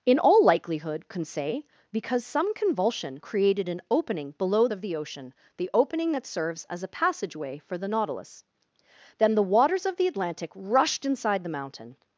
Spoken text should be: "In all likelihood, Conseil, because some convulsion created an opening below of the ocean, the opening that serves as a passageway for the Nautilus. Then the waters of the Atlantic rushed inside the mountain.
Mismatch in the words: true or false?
false